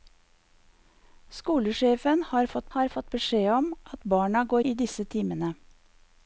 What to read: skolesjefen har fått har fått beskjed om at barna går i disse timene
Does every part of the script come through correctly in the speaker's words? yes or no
yes